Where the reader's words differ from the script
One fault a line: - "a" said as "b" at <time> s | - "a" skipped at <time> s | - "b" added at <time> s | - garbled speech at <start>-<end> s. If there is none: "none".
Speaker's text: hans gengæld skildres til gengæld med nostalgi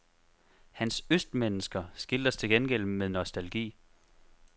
- "gengæld" said as "østmennesker" at 1.1 s